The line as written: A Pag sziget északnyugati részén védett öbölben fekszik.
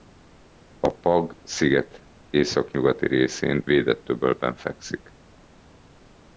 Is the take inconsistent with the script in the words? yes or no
no